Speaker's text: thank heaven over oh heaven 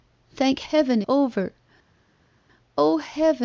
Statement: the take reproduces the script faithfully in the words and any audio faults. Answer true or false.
true